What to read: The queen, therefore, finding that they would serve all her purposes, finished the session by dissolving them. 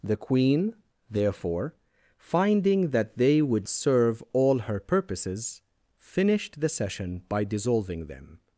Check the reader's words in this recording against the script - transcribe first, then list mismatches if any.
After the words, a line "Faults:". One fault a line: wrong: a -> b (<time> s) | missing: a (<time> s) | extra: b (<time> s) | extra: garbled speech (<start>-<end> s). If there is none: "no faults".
The queen, therefore, finding that they would serve all her purposes, finished the session by dissolving them.
Faults:
no faults